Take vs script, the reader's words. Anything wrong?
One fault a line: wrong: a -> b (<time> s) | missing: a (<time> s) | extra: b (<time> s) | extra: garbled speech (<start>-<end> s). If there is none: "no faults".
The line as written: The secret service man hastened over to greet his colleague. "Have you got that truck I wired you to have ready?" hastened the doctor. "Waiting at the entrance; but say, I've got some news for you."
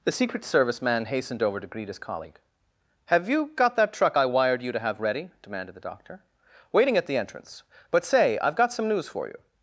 wrong: hastened -> demanded (5.4 s)